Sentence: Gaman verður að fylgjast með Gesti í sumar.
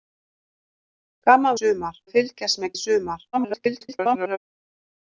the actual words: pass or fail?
fail